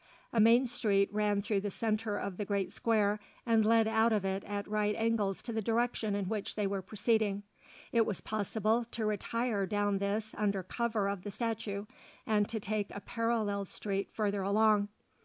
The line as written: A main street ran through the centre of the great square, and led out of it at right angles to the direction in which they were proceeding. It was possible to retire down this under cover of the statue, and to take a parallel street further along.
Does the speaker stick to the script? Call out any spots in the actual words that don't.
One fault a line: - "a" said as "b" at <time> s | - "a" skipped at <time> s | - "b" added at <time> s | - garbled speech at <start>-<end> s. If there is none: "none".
none